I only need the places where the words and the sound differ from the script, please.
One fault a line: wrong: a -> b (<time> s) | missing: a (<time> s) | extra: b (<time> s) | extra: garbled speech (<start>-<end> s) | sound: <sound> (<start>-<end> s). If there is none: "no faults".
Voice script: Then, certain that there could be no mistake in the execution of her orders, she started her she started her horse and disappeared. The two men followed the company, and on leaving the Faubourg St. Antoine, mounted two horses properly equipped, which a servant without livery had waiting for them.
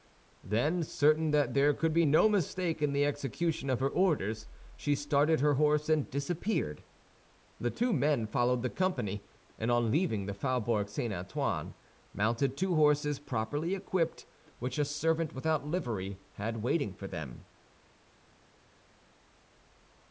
missing: she started her (5.5 s)